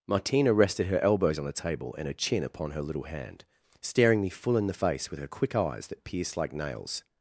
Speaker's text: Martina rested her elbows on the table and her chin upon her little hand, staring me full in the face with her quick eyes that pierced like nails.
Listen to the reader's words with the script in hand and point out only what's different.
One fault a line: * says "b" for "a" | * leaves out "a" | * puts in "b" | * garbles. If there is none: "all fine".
all fine